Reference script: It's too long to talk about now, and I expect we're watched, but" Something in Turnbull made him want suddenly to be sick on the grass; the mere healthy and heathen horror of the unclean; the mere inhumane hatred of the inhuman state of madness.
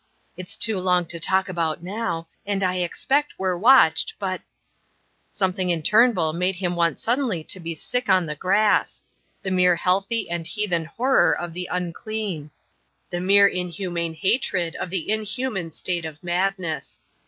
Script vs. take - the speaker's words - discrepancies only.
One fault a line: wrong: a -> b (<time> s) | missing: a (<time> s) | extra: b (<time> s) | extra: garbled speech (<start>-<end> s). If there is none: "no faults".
no faults